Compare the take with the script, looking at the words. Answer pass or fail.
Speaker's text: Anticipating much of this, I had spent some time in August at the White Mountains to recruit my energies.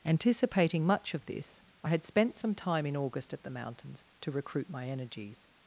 fail